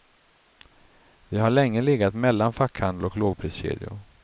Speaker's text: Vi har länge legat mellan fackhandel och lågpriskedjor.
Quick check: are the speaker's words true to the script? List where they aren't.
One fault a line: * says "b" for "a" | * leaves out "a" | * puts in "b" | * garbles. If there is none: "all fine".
all fine